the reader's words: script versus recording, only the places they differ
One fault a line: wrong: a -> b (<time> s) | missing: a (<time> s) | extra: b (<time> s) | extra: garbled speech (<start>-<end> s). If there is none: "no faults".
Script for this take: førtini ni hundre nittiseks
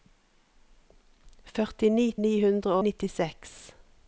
no faults